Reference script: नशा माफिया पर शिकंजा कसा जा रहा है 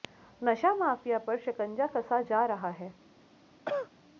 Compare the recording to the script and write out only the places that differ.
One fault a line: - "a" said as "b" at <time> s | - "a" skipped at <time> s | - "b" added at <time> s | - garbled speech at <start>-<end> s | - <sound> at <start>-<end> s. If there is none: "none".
- cough at 3.7-3.9 s